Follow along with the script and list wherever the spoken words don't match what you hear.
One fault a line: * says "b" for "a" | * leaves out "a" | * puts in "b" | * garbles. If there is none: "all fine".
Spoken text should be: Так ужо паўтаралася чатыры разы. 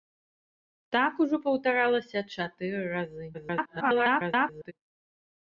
* garbles